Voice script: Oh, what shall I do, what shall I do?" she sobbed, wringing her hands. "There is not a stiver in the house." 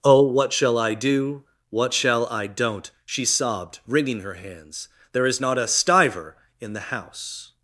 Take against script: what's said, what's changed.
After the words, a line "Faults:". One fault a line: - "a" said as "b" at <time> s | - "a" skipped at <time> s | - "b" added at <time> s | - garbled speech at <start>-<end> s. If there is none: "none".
Oh, what shall I do, what shall I don't?" she sobbed, wringing her hands. "There is not a stiver in the house."
Faults:
- "do" said as "don't" at 2.5 s